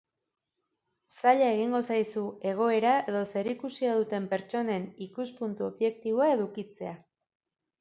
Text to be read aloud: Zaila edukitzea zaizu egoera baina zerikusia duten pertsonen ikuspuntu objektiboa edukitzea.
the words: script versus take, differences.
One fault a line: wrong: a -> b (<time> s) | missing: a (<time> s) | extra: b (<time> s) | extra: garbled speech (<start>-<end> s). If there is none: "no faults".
wrong: edukitzea -> egingo (1.6 s)
wrong: baina -> edo (3.1 s)